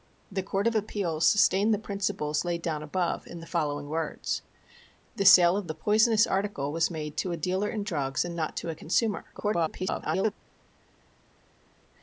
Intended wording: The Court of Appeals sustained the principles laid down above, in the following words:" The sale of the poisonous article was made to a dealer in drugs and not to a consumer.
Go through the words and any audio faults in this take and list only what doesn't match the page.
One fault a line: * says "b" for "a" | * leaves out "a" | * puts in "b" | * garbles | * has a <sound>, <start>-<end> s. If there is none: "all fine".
* garbles